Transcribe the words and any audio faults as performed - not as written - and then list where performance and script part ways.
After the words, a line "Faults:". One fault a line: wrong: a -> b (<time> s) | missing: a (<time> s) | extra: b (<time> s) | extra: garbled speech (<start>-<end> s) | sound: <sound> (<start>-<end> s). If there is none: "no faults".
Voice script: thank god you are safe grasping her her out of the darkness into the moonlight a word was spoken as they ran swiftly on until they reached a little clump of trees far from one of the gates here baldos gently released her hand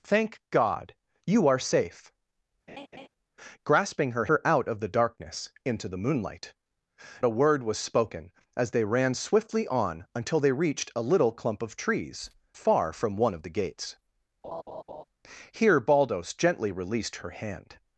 thank god you are safe grasping her her out of the darkness into the moonlight a word was spoken as they ran swiftly on until they reached a little clump of trees far from one of the gates here baldos gently released her hand
Faults:
sound: laugh (2.7-3.1 s)
sound: laugh (14.4-15.0 s)